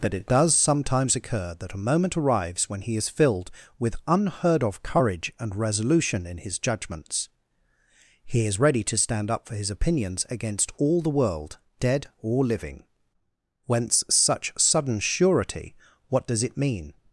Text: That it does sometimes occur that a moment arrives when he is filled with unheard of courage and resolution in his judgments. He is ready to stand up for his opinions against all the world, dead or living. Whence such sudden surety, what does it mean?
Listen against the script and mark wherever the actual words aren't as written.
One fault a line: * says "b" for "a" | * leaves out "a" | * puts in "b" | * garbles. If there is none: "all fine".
all fine